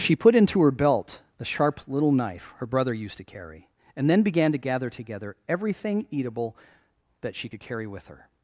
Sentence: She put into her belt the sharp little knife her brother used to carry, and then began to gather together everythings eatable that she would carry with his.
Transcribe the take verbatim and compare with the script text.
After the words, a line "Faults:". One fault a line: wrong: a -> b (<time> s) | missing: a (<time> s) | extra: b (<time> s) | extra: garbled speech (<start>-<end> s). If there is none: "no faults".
She put into her belt the sharp little knife her brother used to carry, and then began to gather together everything eatable that she could carry with her.
Faults:
wrong: everythings -> everything (5.5 s)
wrong: would -> could (7.5 s)
wrong: his -> her (8.1 s)